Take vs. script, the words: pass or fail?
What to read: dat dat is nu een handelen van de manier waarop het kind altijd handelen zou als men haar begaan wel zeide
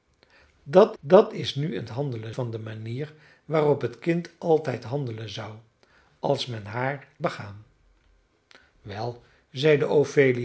pass